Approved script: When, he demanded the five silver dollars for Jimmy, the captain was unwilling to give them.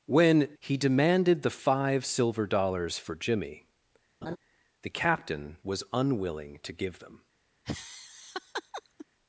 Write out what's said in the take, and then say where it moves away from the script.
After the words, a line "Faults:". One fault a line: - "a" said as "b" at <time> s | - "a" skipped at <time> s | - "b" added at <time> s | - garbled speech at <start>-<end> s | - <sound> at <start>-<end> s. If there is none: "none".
When, he demanded the five silver dollars for Jimmy, the captain was unwilling to give them.
Faults:
- laugh at 4.2-4.4 s
- laugh at 7.6-9.1 s